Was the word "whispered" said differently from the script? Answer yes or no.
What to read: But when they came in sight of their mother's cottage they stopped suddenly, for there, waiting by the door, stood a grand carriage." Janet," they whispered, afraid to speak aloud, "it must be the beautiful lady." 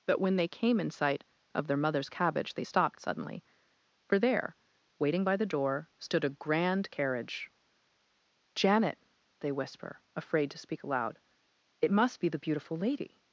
yes